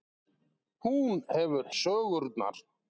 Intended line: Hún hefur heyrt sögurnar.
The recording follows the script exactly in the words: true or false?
false